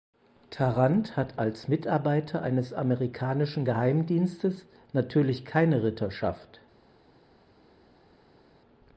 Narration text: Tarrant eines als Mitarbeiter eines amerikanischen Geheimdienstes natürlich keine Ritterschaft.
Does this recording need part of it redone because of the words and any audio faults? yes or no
yes